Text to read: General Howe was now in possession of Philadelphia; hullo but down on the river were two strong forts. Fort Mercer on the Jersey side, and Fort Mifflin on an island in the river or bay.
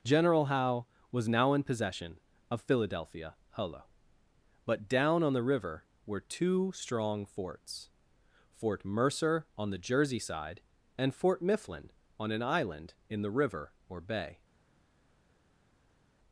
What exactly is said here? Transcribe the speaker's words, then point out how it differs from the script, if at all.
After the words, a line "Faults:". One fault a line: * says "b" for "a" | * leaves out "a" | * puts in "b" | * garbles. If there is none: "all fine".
General Howe was now in possession of Philadelphia; hullo but down on the river were two strong forts. Fort Mercer on the Jersey side, and Fort Mifflin on an island in the river or bay.
Faults:
all fine